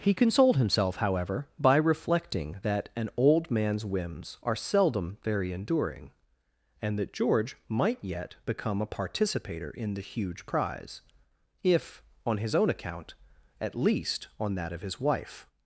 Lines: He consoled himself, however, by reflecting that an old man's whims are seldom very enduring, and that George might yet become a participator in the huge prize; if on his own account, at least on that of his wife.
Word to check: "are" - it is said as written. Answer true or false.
true